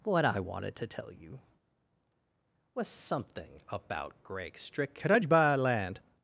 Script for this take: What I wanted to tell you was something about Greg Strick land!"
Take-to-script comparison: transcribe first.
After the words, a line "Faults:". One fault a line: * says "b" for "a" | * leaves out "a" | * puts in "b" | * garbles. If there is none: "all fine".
What I wanted to tell you was something about Greg Strick could I buy land!"
Faults:
* puts in "could I buy"